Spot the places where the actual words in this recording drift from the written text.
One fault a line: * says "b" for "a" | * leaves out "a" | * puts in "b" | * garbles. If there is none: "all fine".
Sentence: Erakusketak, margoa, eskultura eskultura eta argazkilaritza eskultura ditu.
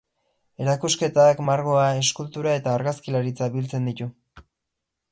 * leaves out "eskultura"
* says "biltzen" for "eskultura"